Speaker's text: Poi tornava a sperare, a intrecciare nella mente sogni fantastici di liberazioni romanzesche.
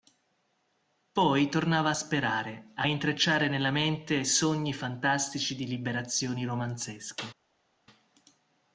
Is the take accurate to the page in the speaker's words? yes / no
yes